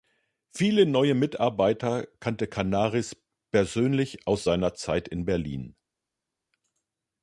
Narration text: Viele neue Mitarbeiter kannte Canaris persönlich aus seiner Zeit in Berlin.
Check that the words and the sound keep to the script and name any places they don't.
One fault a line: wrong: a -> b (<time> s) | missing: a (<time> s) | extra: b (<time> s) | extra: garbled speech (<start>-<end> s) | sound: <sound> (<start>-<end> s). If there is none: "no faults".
no faults